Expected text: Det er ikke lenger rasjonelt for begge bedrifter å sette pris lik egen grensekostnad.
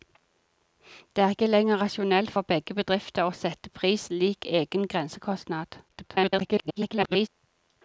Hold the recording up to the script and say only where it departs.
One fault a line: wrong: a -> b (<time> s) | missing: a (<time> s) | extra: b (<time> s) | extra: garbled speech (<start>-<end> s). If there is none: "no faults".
extra: garbled speech (5.9-7.3 s)